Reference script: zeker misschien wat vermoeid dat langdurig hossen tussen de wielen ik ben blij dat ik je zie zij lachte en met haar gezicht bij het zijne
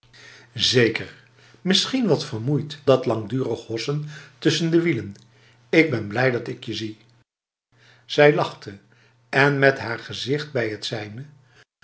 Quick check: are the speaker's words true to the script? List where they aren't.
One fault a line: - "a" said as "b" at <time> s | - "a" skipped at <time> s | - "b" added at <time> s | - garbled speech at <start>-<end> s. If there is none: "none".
none